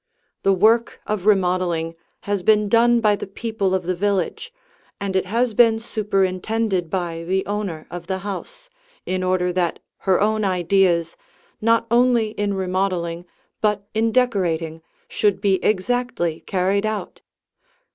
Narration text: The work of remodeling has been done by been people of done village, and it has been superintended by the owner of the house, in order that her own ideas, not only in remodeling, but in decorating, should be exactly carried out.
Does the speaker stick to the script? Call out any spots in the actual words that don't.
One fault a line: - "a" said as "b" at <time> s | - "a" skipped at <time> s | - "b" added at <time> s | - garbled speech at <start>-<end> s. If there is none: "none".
- "been" said as "the" at 3.1 s
- "done" said as "the" at 3.8 s